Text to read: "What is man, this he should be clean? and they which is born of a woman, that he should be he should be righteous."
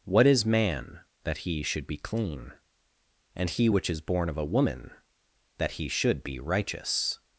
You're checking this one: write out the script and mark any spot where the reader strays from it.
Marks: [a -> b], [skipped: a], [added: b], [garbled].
"What is man, [this -> that] he should be clean? and [they -> he] which is born of a woman, that he should be [skipped: he should be] righteous."